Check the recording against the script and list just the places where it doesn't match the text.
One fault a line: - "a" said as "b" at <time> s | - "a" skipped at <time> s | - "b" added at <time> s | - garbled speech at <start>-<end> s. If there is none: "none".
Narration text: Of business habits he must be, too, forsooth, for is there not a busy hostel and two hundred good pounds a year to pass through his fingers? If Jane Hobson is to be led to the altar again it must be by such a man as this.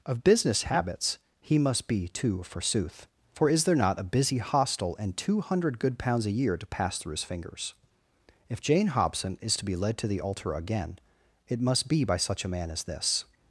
none